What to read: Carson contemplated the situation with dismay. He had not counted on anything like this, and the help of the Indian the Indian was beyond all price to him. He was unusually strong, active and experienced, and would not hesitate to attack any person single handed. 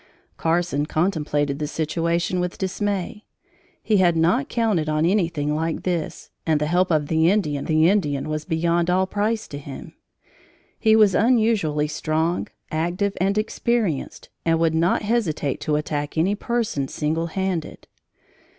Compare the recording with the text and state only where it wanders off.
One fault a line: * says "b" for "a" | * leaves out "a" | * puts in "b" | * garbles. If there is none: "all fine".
all fine